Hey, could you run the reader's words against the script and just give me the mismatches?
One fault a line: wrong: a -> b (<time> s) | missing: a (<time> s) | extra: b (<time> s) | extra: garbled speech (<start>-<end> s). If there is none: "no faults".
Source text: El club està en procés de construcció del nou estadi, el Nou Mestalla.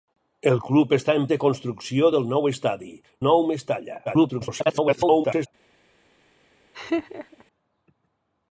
missing: procés (1.3 s)
missing: el (2.9 s)
extra: garbled speech (4.1-5.5 s)